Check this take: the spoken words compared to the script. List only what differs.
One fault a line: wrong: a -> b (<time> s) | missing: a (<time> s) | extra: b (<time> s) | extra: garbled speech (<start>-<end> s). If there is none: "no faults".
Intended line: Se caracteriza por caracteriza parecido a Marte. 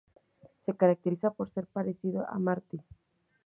wrong: caracteriza -> ser (1.5 s)